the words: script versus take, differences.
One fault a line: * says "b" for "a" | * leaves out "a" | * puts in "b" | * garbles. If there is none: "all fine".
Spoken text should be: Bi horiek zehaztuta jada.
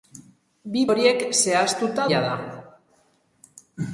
all fine